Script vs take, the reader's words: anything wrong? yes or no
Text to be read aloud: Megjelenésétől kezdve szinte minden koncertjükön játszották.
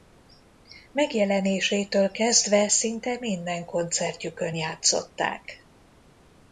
no